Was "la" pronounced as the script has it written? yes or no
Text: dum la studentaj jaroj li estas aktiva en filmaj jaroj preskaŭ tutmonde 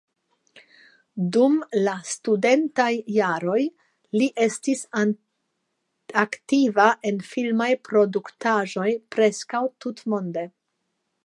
yes